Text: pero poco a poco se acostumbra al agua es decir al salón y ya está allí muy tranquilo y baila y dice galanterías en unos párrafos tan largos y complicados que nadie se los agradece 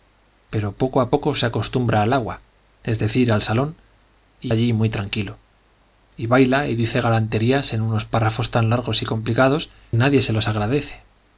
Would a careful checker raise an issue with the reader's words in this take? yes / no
yes